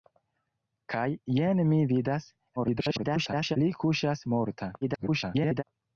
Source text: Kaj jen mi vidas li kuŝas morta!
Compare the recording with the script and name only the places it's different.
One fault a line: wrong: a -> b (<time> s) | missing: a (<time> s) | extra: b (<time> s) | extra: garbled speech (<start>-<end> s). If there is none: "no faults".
extra: garbled speech (2.6-3.6 s)
extra: garbled speech (4.8-5.6 s)